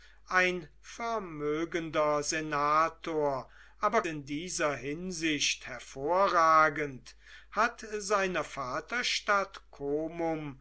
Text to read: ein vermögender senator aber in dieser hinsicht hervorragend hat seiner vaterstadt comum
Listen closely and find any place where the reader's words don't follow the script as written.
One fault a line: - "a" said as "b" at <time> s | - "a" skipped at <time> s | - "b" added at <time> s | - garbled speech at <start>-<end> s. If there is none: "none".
none